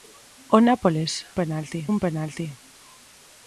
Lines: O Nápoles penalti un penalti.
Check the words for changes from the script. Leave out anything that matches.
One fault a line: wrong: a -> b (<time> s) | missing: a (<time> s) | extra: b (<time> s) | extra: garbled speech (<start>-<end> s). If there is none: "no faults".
no faults